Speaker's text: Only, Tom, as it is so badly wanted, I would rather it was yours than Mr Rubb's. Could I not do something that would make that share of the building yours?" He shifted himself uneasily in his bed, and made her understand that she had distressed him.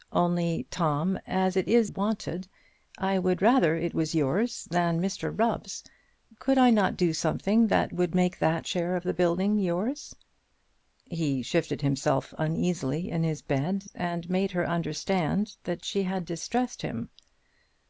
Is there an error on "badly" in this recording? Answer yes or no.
yes